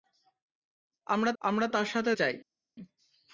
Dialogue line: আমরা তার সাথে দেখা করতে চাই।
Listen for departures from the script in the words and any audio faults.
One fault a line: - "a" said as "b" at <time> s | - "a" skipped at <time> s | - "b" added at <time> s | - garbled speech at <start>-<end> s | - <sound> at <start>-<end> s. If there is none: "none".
- "আমরা" added at 1.4 s
- "দেখা করতে" skipped at 2.1 s